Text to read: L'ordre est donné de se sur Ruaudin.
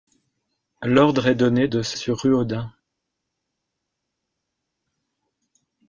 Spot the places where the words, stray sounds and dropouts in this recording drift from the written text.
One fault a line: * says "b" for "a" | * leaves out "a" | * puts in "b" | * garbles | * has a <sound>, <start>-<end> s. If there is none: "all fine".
all fine